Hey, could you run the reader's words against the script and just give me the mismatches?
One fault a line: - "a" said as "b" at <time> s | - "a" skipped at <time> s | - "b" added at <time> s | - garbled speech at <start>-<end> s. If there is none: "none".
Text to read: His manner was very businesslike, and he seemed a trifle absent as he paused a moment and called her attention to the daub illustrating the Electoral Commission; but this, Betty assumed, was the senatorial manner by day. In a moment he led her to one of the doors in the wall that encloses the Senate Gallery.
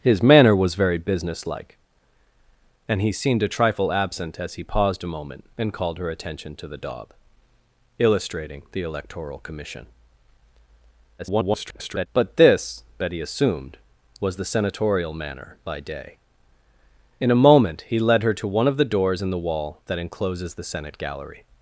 - garbled speech at 11.2-12.1 s